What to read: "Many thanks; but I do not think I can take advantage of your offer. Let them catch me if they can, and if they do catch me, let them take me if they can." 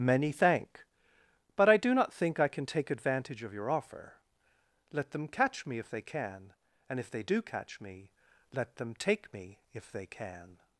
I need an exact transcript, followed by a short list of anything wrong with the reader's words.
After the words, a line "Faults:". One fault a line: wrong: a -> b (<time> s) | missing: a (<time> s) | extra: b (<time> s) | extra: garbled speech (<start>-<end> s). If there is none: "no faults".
"Many thank; but I do not think I can take advantage of your offer. Let them catch me if they can, and if they do catch me, let them take me if they can."
Faults:
wrong: thanks -> thank (0.3 s)